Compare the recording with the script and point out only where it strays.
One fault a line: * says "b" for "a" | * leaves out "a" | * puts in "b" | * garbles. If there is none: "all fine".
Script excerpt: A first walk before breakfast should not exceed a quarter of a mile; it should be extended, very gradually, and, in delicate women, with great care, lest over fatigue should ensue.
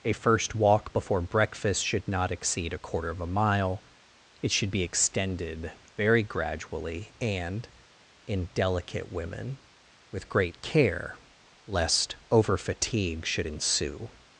all fine